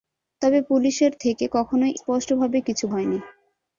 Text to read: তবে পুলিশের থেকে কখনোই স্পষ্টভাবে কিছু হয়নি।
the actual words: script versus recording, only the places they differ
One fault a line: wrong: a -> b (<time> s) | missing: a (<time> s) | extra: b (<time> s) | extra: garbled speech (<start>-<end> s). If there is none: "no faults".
no faults